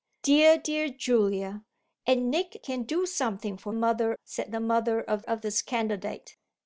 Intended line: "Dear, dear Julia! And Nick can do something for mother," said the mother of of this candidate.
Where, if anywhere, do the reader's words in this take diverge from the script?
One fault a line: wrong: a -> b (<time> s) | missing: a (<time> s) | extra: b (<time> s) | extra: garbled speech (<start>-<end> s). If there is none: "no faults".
no faults